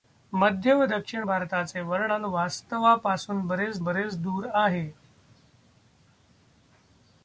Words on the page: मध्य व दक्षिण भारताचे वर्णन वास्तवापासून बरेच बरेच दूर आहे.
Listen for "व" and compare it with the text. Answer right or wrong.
right